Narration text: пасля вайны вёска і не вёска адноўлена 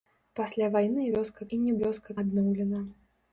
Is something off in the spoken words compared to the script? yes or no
no